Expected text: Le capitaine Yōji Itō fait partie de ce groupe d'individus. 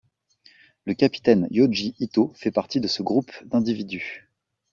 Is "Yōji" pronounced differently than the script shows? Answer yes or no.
no